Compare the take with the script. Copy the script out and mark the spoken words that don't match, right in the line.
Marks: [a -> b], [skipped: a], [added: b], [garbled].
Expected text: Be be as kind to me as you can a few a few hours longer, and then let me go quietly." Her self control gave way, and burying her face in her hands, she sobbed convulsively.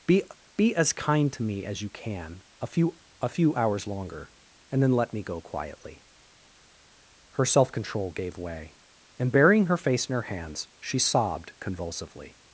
Be be as kind to me as you can a few a few hours longer, and then let me go quietly." Her self control gave way, and burying her face in her hands, she sobbed convulsively.